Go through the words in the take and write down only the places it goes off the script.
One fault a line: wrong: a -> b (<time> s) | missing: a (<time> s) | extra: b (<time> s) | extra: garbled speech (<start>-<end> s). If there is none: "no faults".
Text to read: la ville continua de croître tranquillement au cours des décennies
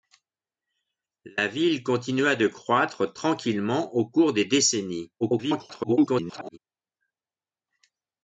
extra: garbled speech (5.2-6.6 s)